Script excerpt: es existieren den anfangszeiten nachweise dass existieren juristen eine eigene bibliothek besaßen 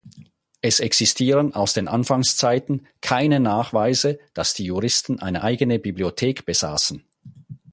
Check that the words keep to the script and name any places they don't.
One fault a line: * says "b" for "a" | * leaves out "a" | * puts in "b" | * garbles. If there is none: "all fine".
* puts in "aus"
* puts in "keine"
* says "die" for "existieren"